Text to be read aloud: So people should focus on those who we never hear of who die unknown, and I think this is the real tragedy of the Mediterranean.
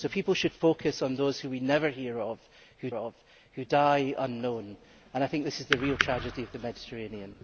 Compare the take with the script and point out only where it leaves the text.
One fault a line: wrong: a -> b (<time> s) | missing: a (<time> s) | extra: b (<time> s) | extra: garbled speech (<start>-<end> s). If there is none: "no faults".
extra: of who (2.9 s)